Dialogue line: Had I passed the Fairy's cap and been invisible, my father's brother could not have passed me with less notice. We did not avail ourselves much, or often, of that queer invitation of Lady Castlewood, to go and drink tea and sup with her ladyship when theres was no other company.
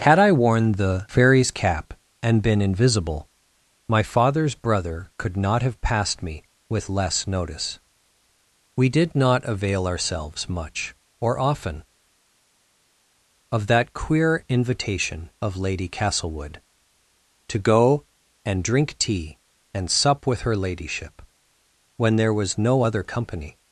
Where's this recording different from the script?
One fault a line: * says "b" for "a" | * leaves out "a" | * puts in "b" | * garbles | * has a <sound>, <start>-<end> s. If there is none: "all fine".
* says "worn" for "passed"
* says "there" for "theres"